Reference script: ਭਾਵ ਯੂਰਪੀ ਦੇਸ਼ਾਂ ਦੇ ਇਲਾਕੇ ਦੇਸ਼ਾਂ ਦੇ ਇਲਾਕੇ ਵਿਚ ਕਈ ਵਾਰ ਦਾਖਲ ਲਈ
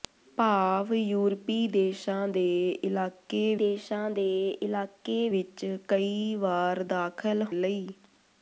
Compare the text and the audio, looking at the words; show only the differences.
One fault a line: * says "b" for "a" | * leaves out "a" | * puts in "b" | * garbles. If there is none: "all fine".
all fine